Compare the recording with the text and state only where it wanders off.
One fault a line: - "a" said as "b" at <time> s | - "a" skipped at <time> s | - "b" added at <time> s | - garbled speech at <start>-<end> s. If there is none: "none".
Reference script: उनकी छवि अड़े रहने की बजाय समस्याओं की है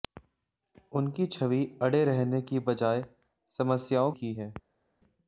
none